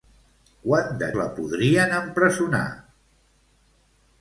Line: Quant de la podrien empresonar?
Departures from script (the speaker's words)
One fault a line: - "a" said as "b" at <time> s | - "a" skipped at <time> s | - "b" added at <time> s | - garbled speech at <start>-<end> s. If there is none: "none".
none